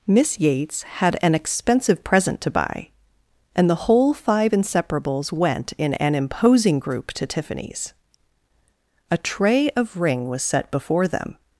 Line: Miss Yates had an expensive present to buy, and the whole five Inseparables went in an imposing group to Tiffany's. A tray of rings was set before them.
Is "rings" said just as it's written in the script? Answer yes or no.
no